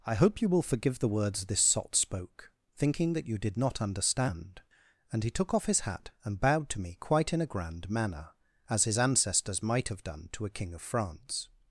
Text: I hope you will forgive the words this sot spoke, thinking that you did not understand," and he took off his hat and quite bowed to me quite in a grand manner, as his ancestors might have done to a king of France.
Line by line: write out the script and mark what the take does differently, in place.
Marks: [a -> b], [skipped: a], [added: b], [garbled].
I hope you will forgive the words this sot spoke, thinking that you did not understand," and he took off his hat and [skipped: quite] bowed to me quite in a grand manner, as his ancestors might have done to a king of France.